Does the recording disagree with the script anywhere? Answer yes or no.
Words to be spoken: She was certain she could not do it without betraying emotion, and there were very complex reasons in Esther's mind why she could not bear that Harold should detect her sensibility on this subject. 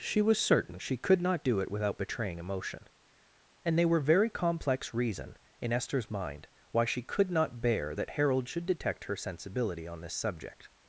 yes